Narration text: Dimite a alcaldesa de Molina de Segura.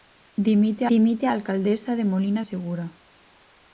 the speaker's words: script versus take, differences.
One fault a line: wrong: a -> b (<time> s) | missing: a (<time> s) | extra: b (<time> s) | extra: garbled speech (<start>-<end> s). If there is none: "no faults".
extra: dimite (0.9 s)
missing: de (2.4 s)